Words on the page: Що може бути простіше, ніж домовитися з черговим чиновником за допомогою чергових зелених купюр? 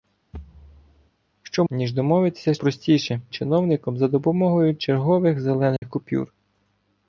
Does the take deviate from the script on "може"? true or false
true